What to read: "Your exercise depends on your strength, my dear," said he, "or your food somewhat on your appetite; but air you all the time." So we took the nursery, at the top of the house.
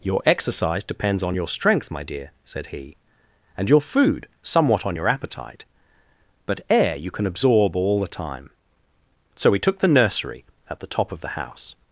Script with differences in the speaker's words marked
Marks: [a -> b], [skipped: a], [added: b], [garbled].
"Your exercise depends on your strength, my dear," said he, ["or -> and] your food somewhat on your appetite; but air you [added: can absorb] all the time." So we took the nursery, at the top of the house.